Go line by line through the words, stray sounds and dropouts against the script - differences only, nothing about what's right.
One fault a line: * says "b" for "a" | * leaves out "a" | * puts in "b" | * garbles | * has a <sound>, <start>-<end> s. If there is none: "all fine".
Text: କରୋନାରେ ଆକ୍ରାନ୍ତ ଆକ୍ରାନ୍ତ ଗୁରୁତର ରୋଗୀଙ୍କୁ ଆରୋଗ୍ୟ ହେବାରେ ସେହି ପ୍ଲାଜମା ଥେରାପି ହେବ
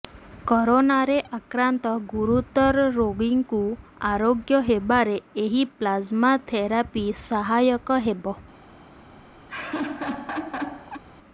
* leaves out "ଆକ୍ରାନ୍ତ"
* says "ଏହି" for "ସେହି"
* puts in "ସହାୟକ"
* has a laugh, 9.5-11.0 s